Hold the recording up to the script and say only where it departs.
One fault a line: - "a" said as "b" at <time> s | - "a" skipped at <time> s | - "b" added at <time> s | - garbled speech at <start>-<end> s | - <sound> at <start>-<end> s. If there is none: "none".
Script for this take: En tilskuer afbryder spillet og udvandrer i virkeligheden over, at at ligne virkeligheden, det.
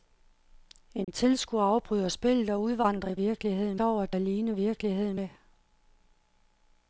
- dropout at 1.0-1.1 s